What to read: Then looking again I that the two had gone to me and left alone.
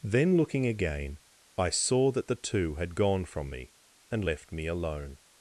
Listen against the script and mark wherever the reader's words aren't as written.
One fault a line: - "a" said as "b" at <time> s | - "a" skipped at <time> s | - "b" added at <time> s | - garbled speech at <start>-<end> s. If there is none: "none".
- "saw" added at 1.7 s
- "to" said as "from" at 3.2 s
- "me" added at 4.5 s